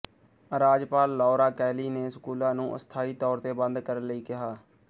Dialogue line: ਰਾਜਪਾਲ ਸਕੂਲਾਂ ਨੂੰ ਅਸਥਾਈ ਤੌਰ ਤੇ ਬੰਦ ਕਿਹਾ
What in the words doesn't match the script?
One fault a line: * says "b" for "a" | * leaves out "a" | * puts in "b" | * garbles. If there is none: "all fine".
* puts in "ਲੌਰਾ ਕੈਲੀ ਨੇ"
* puts in "ਕਰਨ ਲਈ"